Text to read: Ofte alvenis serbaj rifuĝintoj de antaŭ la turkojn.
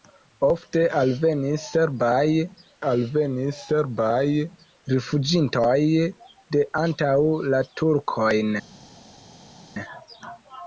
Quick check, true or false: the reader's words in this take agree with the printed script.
false